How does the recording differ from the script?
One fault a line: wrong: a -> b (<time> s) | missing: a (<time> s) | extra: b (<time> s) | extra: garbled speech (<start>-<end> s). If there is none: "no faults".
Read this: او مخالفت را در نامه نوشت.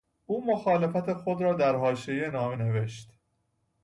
extra: خود (1.1 s)
extra: حاشیهی (1.8 s)